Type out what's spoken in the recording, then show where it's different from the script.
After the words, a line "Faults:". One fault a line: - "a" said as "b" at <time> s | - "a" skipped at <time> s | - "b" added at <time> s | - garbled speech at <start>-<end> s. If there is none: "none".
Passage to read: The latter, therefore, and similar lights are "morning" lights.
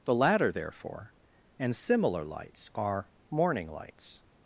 The latter, therefore, and similar lights are "morning" lights.
Faults:
none